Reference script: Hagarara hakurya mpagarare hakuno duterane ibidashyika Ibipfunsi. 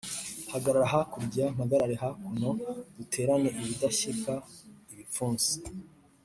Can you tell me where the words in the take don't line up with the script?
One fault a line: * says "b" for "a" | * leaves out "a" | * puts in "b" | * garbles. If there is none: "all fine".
all fine